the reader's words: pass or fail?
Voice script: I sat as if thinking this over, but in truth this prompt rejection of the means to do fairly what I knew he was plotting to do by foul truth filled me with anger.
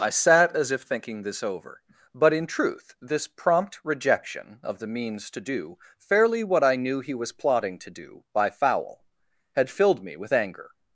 fail